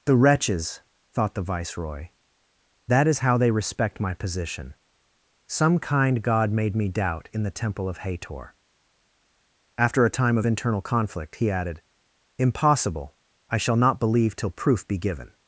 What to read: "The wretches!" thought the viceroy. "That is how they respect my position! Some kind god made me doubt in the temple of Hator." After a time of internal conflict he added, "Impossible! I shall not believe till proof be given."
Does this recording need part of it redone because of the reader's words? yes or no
no